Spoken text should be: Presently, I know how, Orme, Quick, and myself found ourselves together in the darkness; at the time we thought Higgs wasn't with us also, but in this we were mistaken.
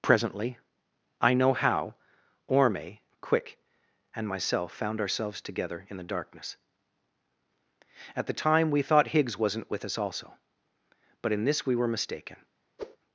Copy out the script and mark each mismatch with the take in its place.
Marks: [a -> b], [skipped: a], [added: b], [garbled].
Presently, I know how, Orme, Quick, and myself found ourselves together in the darkness; at the time we thought Higgs wasn't with us also, but in this we were mistaken.